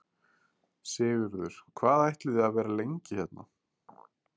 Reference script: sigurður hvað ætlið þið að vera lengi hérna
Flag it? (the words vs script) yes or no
no